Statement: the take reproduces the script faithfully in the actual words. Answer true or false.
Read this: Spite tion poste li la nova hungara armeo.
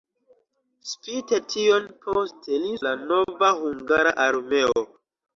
true